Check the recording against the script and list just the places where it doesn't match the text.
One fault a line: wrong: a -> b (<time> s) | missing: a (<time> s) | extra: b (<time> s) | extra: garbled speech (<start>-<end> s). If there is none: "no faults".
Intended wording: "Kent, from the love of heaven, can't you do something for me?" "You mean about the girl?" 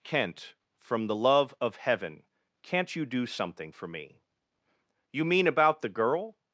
no faults